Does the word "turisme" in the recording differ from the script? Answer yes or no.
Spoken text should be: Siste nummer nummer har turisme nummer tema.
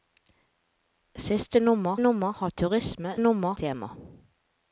no